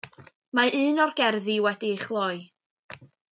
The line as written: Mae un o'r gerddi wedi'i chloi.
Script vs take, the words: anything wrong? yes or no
no